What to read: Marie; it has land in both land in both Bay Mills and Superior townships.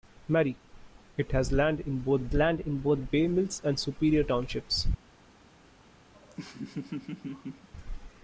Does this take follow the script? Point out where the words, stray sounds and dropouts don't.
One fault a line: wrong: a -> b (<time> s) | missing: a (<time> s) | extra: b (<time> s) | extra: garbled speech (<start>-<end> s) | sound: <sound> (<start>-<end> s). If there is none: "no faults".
sound: laugh (6.1-7.7 s)